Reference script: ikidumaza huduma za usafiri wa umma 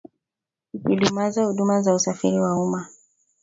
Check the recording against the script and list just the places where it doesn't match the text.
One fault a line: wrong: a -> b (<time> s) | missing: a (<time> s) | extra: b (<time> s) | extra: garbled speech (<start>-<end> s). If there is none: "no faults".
no faults